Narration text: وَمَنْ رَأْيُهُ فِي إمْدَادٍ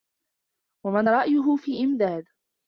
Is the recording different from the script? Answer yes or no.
no